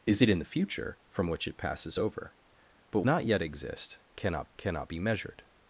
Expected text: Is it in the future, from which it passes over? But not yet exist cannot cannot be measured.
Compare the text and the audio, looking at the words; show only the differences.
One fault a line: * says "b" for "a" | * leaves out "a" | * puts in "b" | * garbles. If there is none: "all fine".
all fine